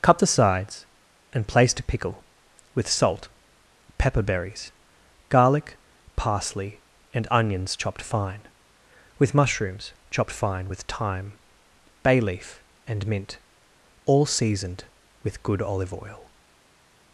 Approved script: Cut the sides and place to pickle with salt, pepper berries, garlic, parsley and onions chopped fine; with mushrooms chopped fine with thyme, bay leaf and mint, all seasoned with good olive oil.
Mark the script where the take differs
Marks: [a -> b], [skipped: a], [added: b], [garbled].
Cut the sides and place to pickle with salt, pepper berries, garlic, parsley and onions chopped fine; with mushrooms chopped fine with thyme, bay leaf and mint, all seasoned with good olive oil.